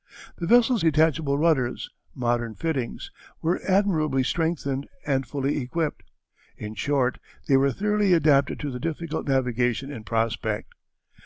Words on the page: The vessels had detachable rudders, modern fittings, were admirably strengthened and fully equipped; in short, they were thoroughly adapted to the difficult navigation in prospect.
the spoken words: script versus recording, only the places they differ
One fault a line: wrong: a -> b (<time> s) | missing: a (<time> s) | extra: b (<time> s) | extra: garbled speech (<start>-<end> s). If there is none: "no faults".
missing: had (0.8 s)